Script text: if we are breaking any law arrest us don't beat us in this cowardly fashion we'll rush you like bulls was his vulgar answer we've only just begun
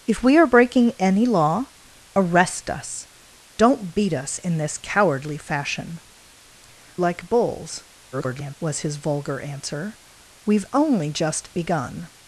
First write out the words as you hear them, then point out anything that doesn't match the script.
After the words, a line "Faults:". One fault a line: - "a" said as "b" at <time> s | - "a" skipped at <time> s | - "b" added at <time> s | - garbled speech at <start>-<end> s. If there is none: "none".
if we are breaking any law arrest us don't beat us in this cowardly fashion like bulls [garbled] was his vulgar answer we've only just begun
Faults:
- "we'll rush you" skipped at 6.0 s
- garbled speech at 8.1-8.6 s